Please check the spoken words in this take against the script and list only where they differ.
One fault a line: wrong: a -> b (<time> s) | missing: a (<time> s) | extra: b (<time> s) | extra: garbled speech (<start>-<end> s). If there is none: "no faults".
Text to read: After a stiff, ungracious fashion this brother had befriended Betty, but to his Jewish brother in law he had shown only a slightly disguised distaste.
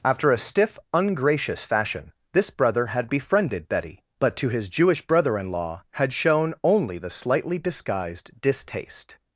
missing: he (5.8 s)
wrong: a -> the (7.0 s)